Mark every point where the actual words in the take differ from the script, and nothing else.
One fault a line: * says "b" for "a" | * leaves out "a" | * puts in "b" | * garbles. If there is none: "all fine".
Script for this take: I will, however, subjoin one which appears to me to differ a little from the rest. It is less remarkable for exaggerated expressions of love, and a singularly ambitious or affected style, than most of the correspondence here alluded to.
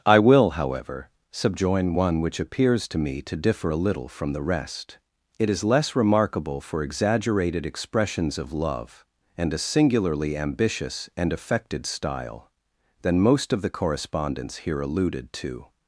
* says "and" for "or"